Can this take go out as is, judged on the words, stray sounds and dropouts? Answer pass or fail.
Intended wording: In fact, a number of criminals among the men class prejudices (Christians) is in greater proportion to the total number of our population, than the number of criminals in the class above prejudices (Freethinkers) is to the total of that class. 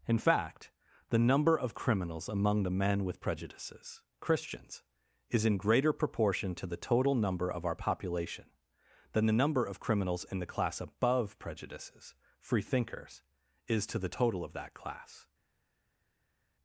fail